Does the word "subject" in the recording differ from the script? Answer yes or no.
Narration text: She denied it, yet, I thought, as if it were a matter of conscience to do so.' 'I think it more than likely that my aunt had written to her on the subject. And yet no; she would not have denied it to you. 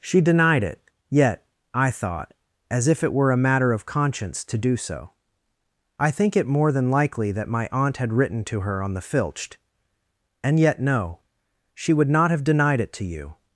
yes